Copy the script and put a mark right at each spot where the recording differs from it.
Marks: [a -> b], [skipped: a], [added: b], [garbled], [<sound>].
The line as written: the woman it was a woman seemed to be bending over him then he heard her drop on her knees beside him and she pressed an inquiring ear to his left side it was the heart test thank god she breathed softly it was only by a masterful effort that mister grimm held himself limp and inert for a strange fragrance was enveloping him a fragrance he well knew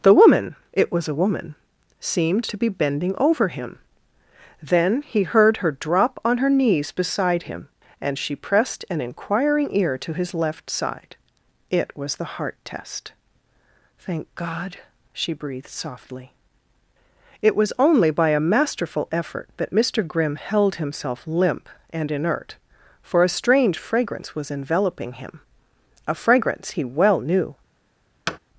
the woman it was a woman seemed to be bending over him then he heard her drop on her knees beside him and she pressed an inquiring ear to his left side it was the heart test thank god she breathed softly it was only by a masterful effort that mister grimm held himself limp and inert for a strange fragrance was enveloping him a fragrance he well knew [thud]